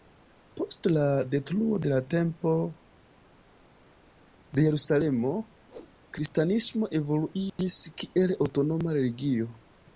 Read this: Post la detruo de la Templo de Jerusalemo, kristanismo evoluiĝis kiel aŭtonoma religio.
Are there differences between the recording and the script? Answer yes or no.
no